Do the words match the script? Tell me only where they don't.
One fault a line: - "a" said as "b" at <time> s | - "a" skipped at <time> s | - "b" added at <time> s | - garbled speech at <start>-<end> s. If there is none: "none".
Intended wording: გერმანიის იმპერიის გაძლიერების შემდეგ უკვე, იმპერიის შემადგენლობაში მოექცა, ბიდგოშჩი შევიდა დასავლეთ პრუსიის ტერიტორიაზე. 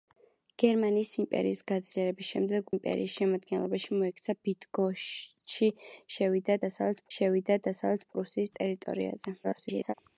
- "უკვე" skipped at 2.7 s
- "შევიდა დასავლეთ" added at 7.2 s
- garbled speech at 9.4-9.9 s